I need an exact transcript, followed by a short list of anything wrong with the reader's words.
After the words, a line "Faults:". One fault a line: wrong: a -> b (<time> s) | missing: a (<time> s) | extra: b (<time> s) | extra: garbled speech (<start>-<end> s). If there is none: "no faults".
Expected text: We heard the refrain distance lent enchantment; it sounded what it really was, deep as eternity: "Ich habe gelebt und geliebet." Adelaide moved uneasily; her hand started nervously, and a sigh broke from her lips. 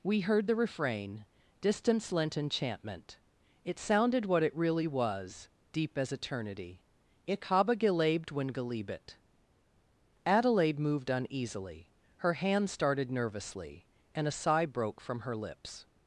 We heard the refrain distance lent enchantment; it sounded what it really was, deep as eternity: "Ich habe gelebt when geliebet." Adelaide moved uneasily; her hand started nervously, and a sigh broke from her lips.
Faults:
wrong: und -> when (8.3 s)